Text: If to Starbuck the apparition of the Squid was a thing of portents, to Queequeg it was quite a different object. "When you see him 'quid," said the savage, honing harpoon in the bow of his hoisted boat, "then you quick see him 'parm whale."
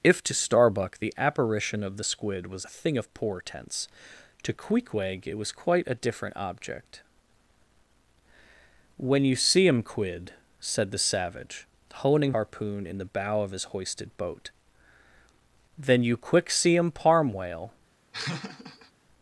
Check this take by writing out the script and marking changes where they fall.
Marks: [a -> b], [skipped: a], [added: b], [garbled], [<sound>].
If to Starbuck the apparition of the Squid was a thing of portents, to Queequeg it was quite a different object. "When you see him 'quid," said the savage, honing harpoon in the bow of his hoisted boat, "then you quick see him 'parm whale." [laugh]